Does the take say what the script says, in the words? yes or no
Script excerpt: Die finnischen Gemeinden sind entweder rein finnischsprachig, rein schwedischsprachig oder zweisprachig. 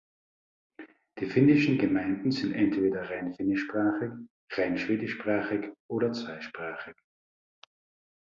yes